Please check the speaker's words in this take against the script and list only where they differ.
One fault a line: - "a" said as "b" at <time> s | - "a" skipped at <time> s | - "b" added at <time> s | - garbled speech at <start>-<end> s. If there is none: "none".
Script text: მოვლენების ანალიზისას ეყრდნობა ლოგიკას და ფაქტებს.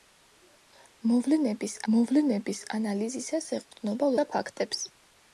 - "მოვლენების" added at 1.9 s
- "ლოგიკას" skipped at 4.1 s